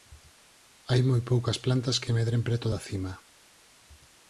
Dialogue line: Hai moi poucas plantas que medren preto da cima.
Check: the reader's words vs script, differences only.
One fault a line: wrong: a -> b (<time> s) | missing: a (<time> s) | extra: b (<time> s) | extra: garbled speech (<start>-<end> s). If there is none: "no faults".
no faults